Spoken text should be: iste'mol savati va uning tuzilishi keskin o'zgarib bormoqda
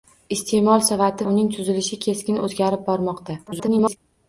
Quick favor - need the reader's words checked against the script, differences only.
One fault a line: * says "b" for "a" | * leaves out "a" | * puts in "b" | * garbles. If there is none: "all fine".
* leaves out "va"
* garbles